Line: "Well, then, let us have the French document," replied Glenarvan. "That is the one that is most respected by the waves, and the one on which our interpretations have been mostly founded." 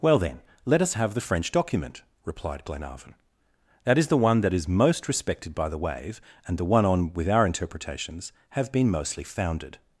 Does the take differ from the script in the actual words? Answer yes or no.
yes